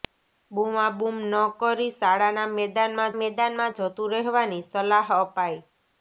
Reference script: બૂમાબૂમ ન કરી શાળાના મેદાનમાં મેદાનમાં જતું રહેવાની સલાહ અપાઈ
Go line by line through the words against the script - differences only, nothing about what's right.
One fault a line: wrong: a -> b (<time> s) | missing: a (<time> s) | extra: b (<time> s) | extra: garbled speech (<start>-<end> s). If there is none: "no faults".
no faults